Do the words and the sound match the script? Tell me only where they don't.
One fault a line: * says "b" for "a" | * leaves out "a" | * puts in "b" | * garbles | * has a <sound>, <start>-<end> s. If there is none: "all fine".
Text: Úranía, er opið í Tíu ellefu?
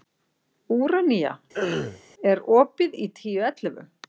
* has a throat clearing, 1.5-2.0 s